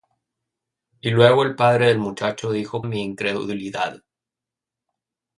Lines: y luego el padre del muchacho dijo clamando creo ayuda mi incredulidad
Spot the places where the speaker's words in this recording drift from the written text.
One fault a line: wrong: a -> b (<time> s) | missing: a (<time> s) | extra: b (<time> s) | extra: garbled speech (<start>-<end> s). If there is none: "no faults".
missing: clamando creo ayuda (2.8 s)